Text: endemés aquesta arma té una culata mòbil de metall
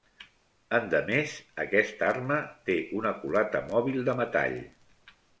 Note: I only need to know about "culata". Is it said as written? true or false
true